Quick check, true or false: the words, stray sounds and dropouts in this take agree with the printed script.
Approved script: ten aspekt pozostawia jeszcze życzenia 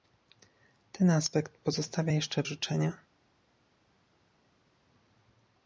true